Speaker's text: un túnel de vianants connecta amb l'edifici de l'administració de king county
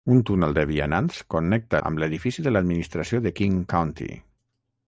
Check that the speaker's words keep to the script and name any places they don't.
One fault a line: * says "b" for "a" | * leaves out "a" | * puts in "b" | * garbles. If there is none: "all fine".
all fine